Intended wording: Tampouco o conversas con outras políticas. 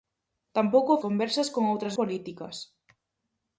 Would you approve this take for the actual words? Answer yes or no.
yes